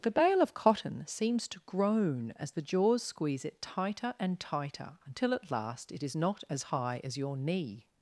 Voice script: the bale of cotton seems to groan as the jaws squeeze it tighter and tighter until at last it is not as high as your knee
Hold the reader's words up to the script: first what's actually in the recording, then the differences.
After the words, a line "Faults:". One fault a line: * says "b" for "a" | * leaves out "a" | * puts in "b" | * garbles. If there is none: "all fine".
the bale of cotton seems to groan as the jaws squeeze it tighter and tighter until at last it is not as high as your knee
Faults:
all fine